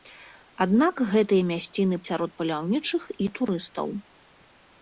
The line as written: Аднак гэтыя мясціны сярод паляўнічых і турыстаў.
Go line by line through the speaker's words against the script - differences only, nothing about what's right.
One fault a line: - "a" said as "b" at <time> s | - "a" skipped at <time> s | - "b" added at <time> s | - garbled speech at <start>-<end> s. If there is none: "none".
none